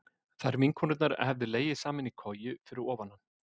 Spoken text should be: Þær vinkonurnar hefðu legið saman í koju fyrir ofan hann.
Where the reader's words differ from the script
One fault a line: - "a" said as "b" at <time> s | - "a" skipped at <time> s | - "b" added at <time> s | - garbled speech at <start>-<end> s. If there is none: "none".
none